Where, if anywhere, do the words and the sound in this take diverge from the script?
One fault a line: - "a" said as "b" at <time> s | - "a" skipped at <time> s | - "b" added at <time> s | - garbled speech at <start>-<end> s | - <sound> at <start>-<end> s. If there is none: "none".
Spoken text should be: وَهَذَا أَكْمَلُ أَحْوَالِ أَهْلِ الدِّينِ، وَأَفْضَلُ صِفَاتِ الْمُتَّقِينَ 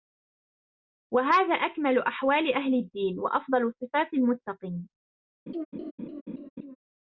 - laugh at 5.5-6.8 s